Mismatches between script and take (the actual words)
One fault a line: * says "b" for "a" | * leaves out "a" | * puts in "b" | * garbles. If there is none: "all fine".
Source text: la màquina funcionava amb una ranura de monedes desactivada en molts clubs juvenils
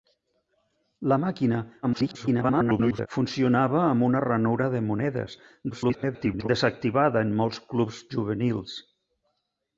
* garbles
* garbles